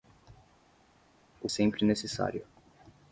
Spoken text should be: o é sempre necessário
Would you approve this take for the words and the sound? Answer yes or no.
yes